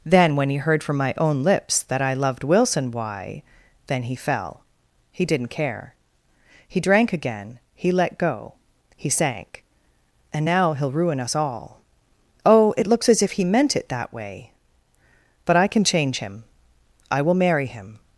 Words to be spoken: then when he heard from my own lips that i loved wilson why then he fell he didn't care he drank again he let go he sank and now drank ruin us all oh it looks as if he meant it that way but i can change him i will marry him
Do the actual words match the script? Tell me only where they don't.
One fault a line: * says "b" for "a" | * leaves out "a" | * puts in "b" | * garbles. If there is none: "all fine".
* says "he'll" for "drank"